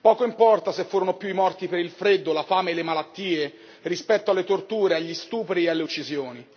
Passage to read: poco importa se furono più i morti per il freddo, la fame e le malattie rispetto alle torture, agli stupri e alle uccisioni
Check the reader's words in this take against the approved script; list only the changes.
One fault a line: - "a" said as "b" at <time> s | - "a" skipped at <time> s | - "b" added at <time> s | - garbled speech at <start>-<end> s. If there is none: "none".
none